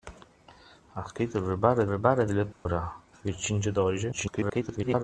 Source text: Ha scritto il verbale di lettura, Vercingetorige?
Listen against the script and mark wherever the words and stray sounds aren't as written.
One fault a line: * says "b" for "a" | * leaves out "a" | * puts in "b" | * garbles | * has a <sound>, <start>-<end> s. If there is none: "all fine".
* puts in "verbale"
* has a dropout, 2.5-2.7 s
* garbles